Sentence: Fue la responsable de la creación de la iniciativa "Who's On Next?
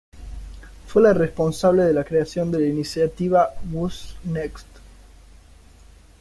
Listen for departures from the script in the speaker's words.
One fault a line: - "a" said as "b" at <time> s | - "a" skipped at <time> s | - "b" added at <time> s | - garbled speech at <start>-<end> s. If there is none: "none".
- "On" skipped at 4.1 s